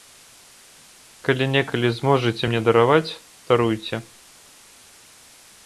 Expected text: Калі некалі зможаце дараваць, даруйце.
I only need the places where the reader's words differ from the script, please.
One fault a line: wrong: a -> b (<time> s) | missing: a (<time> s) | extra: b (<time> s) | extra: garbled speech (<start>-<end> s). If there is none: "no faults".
extra: мне (2.5 s)